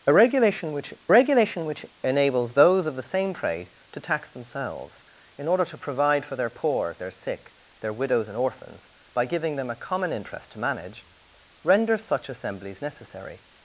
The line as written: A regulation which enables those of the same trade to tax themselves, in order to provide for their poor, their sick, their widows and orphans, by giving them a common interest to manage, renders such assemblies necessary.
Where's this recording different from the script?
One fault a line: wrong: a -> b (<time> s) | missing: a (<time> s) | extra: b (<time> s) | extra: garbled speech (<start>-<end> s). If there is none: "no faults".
extra: regulation which (1.1 s)